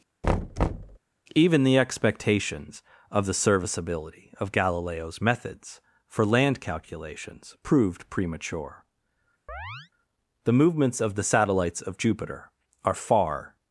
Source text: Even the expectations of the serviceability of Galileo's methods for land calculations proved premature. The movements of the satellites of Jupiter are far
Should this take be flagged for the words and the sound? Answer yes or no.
yes